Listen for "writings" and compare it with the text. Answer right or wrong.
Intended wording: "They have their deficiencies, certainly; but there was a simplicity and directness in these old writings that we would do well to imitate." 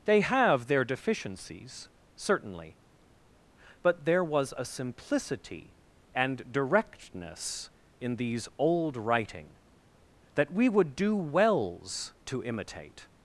wrong